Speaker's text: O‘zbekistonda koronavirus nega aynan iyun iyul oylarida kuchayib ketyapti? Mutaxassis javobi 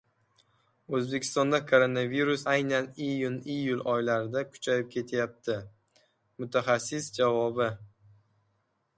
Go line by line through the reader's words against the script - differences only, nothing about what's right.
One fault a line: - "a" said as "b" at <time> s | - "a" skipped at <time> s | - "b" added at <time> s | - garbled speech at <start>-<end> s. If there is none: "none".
- "nega" skipped at 2.5 s